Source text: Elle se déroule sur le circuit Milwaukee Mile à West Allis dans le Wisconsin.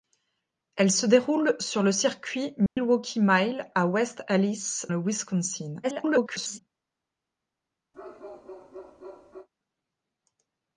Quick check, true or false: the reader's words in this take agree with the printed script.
false